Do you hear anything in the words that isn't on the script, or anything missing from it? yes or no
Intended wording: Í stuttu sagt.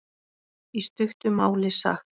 yes